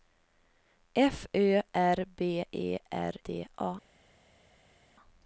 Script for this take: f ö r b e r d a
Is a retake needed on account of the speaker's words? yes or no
no